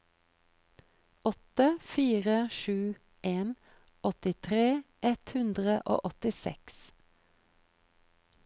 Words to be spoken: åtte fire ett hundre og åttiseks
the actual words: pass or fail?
fail